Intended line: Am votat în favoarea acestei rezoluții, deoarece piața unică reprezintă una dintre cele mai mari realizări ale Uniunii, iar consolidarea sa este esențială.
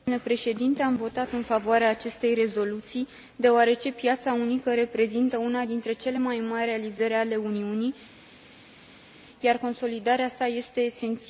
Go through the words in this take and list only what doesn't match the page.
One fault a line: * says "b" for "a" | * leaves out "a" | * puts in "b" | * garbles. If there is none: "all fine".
all fine